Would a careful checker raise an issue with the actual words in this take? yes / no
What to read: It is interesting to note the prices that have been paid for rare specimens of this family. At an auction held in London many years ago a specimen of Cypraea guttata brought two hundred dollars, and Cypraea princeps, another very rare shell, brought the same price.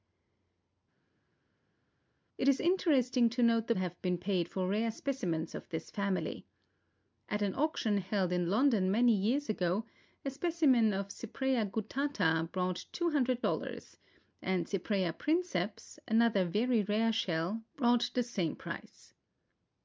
yes